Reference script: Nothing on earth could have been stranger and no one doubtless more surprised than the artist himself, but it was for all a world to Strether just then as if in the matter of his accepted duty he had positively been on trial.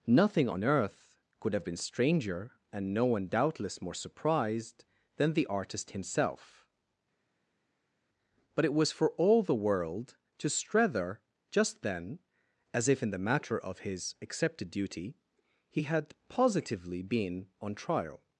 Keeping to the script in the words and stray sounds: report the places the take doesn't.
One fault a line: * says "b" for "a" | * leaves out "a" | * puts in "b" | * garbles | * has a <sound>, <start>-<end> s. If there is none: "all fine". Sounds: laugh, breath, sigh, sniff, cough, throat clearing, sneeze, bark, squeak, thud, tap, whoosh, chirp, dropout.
* says "the" for "a"